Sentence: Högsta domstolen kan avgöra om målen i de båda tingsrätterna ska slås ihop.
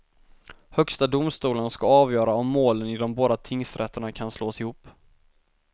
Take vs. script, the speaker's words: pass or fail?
fail